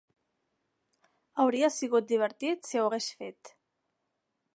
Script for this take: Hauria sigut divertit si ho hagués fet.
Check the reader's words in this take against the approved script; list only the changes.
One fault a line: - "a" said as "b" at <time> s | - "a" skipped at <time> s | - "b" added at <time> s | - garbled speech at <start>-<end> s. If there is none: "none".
none